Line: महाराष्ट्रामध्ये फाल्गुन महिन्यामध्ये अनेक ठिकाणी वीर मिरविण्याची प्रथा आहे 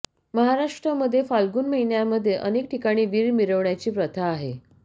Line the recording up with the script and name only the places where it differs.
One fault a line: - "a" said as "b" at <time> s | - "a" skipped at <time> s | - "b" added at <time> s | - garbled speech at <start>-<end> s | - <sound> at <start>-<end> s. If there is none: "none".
none